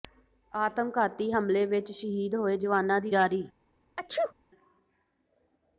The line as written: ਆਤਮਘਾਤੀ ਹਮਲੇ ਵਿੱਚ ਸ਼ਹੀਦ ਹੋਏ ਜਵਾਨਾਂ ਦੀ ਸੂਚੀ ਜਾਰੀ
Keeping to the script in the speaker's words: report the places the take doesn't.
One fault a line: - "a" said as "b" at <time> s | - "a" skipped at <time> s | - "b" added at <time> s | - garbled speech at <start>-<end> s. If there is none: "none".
- "ਸੂਚੀ" skipped at 3.1 s